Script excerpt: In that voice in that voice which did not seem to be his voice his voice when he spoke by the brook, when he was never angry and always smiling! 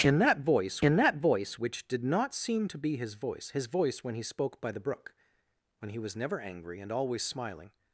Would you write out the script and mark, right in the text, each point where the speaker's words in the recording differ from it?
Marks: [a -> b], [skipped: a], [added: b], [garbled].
In that voice in that voice which did not seem to be his voice his voice when he spoke by the brook, when he was never angry and always smiling!